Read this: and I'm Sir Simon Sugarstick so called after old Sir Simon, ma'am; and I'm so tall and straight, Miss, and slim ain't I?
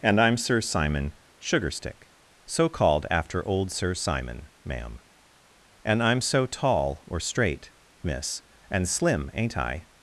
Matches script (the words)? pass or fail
fail